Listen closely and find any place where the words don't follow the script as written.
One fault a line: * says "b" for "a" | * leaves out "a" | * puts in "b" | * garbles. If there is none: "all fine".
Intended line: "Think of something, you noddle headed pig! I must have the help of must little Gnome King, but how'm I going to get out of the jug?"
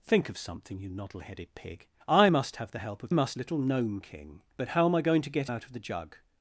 all fine